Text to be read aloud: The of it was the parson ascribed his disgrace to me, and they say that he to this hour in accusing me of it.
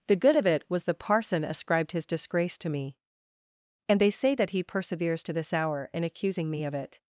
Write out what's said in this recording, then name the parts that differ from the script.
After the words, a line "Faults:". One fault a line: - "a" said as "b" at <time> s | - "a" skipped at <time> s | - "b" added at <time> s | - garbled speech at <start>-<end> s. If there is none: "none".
The good of it was the parson ascribed his disgrace to me, and they say that he perseveres to this hour in accusing me of it.
Faults:
- "good" added at 0.1 s
- "perseveres" added at 4.6 s